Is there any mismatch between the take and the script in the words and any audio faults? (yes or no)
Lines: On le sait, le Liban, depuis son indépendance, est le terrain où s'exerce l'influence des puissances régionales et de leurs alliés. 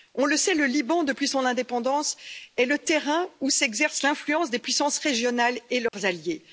yes